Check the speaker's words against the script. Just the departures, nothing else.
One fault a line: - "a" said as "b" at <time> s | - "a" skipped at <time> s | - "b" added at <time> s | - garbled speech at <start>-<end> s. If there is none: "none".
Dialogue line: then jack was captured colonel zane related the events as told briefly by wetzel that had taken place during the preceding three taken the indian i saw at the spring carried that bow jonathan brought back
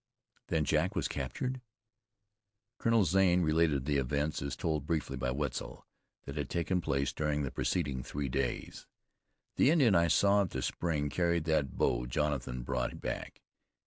- "taken" said as "days" at 8.3 s